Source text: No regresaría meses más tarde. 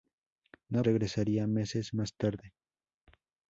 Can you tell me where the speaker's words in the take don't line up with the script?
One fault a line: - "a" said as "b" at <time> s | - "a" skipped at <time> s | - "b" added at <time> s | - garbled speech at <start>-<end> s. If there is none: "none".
none